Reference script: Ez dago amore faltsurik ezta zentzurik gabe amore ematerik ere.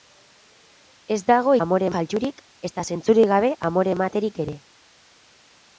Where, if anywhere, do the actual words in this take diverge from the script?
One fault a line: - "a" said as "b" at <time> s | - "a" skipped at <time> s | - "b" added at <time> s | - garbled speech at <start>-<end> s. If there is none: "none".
none